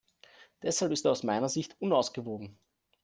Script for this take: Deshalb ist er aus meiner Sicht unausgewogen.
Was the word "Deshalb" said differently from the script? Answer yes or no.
no